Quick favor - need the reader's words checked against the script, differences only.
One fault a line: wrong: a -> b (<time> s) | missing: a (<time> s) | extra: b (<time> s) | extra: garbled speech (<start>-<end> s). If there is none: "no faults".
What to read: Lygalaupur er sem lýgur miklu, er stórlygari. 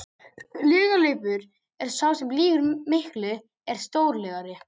extra: sá (2.0 s)